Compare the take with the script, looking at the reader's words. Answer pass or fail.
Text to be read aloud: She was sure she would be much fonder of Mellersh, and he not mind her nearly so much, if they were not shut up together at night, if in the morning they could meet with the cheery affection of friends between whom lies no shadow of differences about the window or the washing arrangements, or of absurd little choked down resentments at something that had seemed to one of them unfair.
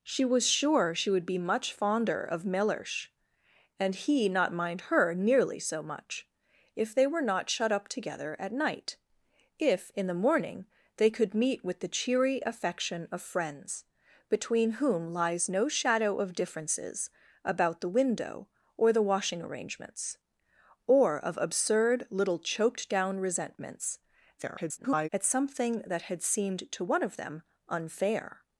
fail